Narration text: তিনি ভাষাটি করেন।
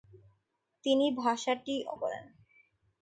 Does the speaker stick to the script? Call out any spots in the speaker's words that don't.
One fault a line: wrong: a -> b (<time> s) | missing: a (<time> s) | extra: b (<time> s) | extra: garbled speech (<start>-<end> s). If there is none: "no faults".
no faults